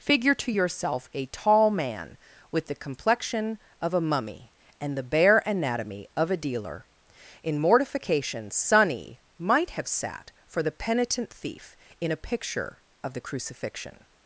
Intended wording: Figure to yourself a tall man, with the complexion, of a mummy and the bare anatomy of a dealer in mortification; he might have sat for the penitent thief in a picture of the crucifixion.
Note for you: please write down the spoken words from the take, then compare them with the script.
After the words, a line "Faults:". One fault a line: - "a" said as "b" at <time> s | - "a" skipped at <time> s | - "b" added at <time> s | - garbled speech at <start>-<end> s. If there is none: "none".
Figure to yourself a tall man, with the complexion, of a mummy and the bare anatomy of a dealer in mortification; sonny might have sat for the penitent thief in a picture of the crucifixion.
Faults:
- "he" said as "sonny" at 8.5 s